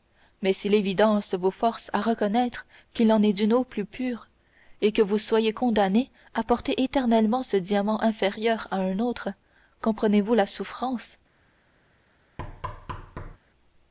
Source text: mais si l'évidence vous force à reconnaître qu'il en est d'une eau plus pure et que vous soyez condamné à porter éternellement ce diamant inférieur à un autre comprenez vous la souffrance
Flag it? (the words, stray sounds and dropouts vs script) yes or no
yes